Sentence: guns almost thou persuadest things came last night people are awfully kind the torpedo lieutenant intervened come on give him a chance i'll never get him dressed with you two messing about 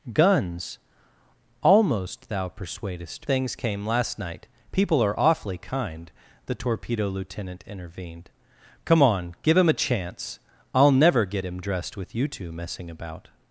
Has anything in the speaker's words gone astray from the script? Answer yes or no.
no